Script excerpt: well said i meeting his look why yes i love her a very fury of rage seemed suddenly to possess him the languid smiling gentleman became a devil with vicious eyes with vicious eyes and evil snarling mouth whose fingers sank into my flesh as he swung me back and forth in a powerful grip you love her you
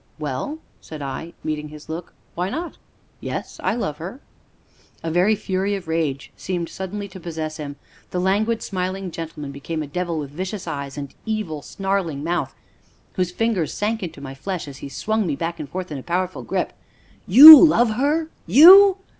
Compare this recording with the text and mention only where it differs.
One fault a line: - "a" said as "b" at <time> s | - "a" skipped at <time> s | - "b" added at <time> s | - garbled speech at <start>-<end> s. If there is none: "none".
- "not" added at 2.5 s
- "with vicious eyes" skipped at 11.0 s